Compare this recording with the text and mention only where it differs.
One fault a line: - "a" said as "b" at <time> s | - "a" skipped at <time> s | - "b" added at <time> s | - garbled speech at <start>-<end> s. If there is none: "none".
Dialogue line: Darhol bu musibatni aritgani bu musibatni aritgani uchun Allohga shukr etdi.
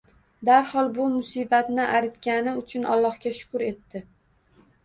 - "bu musibatni aritgani" skipped at 2.5 s